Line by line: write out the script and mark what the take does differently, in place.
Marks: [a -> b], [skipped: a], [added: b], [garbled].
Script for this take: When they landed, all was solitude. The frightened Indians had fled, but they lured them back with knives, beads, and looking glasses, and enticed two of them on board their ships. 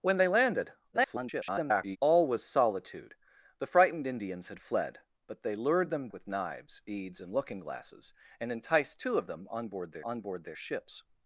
When they landed, [garbled] all was solitude. The frightened Indians had fled, but they lured them [skipped: back] with knives, beads, and looking glasses, and enticed two of them on board their [added: on board their] ships.